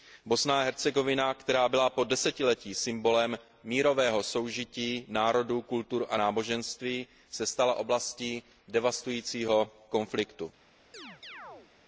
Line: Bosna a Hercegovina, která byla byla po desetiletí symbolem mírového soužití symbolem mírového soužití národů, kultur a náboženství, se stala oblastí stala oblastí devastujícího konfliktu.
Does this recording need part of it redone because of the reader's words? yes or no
yes